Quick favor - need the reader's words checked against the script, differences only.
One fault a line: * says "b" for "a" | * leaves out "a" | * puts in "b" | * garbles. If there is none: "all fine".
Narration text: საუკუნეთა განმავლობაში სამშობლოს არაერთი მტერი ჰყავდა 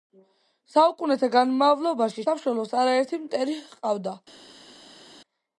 all fine